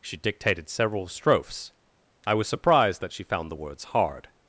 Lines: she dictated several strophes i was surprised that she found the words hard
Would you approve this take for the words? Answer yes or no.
yes